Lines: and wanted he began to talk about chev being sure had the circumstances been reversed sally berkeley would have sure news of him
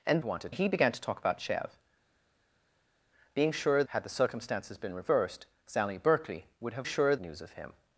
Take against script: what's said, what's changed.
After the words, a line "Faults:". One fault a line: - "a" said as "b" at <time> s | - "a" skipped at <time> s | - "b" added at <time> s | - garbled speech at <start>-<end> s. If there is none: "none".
and wanted he began to talk about chev being sure had the circumstances been reversed sally berkeley would have sure news of him
Faults:
none